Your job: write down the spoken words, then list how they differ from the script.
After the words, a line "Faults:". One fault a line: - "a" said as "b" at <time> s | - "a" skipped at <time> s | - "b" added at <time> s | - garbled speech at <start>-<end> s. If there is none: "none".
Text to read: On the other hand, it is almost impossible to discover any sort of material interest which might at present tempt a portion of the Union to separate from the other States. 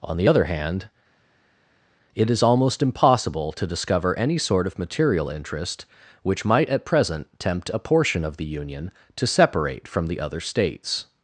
On the other hand, it is almost impossible to discover any sort of material interest which might at present tempt a portion of the Union to separate from the other States.
Faults:
none